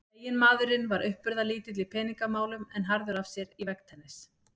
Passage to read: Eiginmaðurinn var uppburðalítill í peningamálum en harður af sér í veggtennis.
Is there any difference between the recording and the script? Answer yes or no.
no